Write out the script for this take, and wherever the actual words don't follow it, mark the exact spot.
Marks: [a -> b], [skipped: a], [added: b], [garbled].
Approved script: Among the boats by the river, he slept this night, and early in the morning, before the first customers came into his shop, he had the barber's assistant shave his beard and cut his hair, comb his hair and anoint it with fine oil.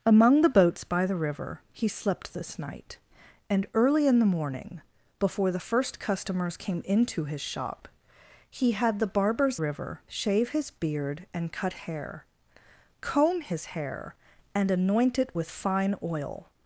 Among the boats by the river, he slept this night, and early in the morning, before the first customers came into his shop, he had the barber's [assistant -> river] shave his beard and cut [skipped: his] hair, comb his hair and anoint it with fine oil.